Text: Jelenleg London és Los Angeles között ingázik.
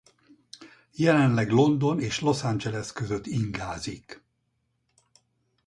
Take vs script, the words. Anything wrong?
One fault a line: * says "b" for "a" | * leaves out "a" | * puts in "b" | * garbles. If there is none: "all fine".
all fine